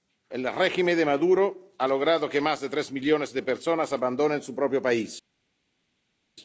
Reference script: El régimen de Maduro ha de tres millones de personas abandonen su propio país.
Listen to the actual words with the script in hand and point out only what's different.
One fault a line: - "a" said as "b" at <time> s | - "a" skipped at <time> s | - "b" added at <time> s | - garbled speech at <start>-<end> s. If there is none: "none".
- "logrado que más" added at 1.9 s